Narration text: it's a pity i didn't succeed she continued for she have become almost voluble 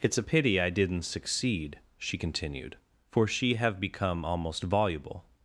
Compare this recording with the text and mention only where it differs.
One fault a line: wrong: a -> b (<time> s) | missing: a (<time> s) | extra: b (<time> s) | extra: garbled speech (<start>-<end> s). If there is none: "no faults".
no faults